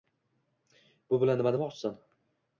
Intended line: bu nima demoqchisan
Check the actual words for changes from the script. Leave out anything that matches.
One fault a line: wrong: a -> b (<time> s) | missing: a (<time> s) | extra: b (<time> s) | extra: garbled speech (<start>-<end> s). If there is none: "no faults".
extra: bilan (1.2 s)